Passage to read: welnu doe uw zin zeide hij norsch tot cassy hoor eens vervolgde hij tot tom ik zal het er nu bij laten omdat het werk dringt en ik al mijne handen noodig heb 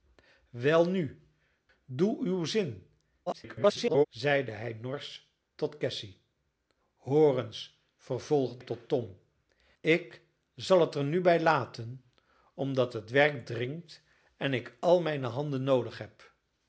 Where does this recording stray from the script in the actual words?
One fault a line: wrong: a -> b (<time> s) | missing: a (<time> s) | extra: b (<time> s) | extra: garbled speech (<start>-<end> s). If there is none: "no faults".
extra: garbled speech (3.3-4.1 s)
missing: hij (8.6 s)